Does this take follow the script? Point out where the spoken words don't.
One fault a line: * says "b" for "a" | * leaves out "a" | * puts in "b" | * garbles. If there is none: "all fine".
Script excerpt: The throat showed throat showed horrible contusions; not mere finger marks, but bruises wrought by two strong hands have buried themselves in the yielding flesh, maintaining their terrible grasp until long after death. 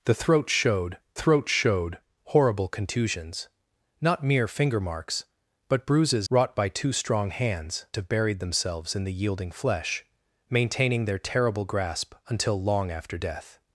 all fine